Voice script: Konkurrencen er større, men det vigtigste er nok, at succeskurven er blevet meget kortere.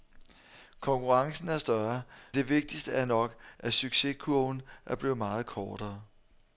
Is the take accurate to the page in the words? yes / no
no